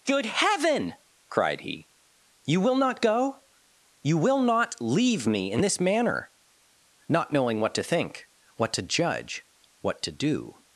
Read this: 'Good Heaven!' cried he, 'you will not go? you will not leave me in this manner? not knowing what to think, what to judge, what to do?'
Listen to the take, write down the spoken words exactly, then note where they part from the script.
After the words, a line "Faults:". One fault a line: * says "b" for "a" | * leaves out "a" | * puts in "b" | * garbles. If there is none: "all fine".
'Good Heaven!' cried he, 'you will not go? you will not leave me in this manner? not knowing what to think, what to judge, what to do?'
Faults:
all fine